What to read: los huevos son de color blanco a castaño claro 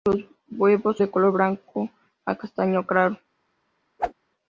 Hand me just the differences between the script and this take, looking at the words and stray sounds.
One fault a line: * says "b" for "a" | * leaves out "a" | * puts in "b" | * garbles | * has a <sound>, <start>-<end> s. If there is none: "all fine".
* leaves out "son"
* has a whoosh, 4.0-4.1 s